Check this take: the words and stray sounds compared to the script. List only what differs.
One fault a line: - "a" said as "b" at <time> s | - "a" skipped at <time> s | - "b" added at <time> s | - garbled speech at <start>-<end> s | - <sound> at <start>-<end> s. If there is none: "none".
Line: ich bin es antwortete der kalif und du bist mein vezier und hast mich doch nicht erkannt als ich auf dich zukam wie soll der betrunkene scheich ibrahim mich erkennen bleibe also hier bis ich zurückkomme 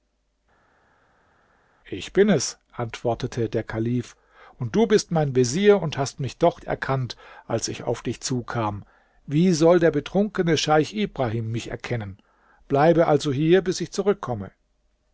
- "nicht" skipped at 6.6 s